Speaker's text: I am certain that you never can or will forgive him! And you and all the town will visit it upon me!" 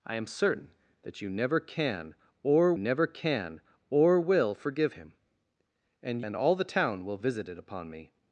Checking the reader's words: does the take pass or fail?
fail